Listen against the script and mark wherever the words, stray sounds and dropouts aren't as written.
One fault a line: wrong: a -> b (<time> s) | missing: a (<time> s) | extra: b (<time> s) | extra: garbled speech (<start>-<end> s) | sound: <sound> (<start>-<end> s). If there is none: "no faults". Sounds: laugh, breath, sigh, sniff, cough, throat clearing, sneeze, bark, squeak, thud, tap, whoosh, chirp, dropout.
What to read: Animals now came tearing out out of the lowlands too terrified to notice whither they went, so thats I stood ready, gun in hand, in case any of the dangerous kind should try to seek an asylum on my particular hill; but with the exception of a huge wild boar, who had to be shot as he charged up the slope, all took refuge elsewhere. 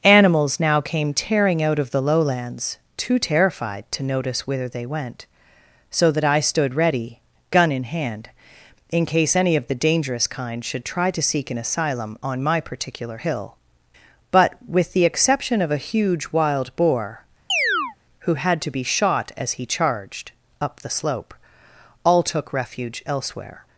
missing: out (1.8 s)
wrong: thats -> that (6.1 s)
sound: chirp (17.5-18.0 s)